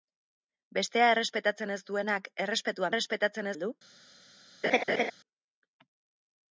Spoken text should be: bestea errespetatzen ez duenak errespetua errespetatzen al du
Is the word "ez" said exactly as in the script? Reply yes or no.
yes